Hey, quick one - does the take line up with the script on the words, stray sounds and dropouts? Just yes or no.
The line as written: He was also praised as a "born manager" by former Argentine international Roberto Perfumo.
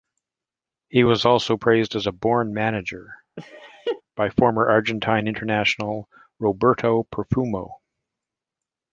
no